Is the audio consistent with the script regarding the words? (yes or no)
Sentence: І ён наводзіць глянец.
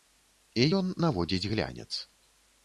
yes